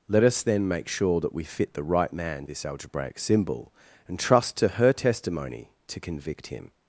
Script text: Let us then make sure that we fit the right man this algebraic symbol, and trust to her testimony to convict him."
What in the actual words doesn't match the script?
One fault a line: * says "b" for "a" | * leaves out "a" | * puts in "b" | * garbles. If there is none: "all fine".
all fine